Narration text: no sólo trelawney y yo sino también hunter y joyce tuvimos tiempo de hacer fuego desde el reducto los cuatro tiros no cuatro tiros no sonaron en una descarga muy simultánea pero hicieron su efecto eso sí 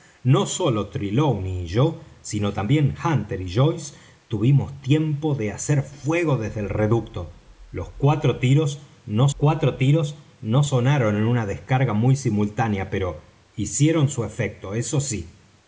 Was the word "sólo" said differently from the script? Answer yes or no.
no